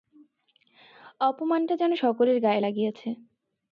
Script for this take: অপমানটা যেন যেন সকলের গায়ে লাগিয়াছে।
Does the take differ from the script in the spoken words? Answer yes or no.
yes